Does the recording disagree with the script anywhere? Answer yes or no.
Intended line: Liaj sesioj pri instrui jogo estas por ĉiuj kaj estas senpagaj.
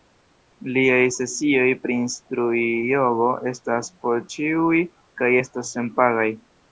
no